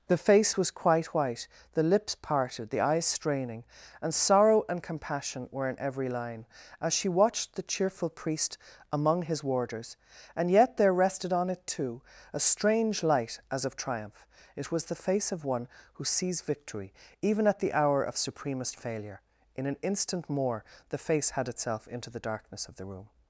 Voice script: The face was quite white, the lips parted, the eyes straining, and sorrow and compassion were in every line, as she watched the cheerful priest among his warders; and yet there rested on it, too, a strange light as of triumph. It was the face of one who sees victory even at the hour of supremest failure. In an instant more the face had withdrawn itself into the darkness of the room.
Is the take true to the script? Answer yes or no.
no